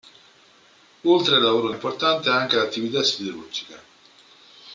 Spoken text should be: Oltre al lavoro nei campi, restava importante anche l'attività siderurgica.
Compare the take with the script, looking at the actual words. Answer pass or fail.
fail